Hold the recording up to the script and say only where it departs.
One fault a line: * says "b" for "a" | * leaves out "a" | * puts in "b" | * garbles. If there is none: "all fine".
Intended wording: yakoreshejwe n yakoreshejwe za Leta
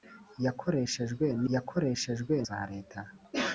all fine